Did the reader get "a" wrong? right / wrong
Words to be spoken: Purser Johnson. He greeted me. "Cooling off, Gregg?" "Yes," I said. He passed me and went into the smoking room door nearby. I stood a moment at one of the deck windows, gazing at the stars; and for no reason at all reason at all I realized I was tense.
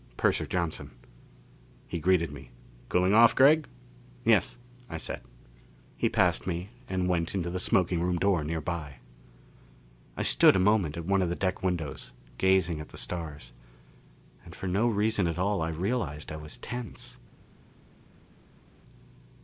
right